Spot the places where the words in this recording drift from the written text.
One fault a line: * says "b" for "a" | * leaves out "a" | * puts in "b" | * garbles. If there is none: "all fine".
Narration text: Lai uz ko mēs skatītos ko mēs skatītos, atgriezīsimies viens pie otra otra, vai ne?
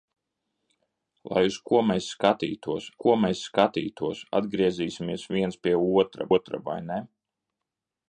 all fine